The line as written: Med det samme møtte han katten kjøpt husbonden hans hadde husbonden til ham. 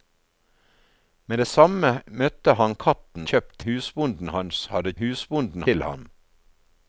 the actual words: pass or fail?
pass